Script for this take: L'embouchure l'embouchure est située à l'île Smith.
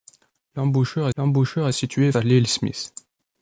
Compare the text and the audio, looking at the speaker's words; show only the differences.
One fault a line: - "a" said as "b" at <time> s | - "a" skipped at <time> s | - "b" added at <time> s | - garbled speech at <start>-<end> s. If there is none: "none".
none